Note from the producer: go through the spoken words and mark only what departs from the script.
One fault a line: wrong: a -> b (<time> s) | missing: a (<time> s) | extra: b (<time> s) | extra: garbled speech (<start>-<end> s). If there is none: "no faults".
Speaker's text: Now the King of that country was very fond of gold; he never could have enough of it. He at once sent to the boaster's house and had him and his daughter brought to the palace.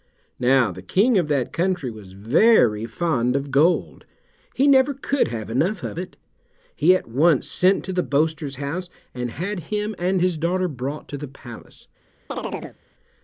no faults